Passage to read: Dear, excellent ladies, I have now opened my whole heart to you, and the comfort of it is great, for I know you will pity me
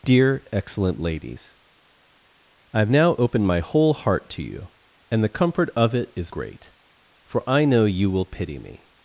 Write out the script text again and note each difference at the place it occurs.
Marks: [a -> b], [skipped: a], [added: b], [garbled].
Dear, excellent ladies, I have now opened my whole heart to you, and the comfort of it is great, for I know you will pity me